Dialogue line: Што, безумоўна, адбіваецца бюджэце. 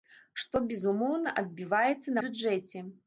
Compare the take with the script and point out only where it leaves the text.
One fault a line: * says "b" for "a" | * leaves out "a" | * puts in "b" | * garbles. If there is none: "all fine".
all fine